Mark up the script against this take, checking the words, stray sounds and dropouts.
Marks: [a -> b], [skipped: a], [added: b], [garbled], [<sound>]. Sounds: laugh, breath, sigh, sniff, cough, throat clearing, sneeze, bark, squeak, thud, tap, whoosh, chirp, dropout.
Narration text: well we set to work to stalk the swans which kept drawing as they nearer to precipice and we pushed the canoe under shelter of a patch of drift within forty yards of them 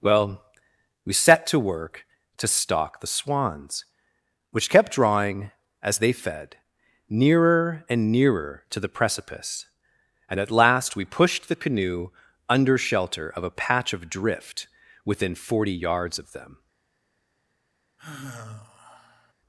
well we set to work to stalk the swans which kept drawing as they [added: fed] nearer [added: and nearer] to [added: the] precipice and [added: at last] we pushed the canoe under shelter of a patch of drift within forty yards of them [sigh]